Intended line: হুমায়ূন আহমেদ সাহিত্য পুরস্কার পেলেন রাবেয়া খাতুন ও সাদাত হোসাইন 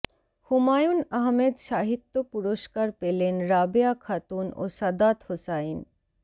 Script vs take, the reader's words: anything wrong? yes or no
no